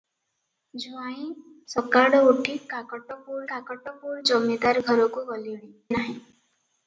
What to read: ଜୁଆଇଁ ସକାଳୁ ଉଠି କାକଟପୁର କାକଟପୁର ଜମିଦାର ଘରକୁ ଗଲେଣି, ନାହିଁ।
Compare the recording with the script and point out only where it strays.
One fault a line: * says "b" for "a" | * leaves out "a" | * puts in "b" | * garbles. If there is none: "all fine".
all fine